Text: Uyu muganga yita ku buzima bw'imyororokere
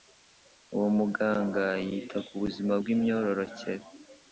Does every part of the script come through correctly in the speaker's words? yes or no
no